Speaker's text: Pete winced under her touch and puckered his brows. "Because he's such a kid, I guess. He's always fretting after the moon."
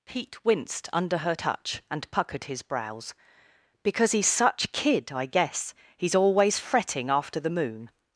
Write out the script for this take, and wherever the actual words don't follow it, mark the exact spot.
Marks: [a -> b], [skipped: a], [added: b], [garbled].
Pete winced under her touch and puckered his brows. "Because he's such [skipped: a] kid, I guess. He's always fretting after the moon."